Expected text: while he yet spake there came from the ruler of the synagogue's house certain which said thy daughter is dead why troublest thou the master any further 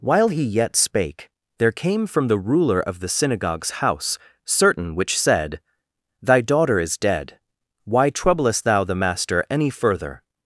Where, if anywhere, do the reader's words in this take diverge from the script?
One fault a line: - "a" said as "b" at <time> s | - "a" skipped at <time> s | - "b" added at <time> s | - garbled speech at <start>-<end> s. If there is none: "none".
none